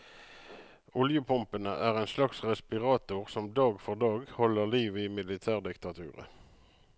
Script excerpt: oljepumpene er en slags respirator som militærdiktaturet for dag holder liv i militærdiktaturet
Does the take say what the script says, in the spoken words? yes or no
no